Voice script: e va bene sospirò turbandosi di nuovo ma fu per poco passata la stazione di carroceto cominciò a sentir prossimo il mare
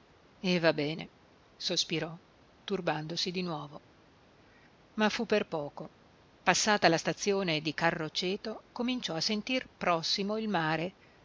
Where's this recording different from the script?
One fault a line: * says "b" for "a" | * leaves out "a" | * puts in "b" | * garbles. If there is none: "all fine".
all fine